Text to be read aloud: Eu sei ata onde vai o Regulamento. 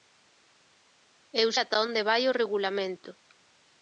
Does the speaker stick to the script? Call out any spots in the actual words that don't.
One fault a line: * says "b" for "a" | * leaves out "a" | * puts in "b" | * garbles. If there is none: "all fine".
* leaves out "sei"